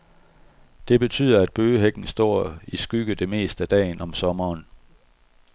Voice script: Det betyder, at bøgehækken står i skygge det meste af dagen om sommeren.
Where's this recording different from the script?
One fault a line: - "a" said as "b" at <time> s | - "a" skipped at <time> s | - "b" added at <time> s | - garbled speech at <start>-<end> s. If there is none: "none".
none